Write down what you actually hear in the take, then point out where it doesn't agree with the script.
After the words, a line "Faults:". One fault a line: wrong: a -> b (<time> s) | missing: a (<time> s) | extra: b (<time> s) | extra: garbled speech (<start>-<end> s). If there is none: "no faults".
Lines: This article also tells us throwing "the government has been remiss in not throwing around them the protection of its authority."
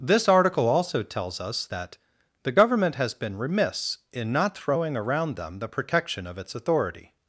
This article also tells us that "the government has been remiss in not throwing around them the protection of its authority."
Faults:
wrong: throwing -> that (1.7 s)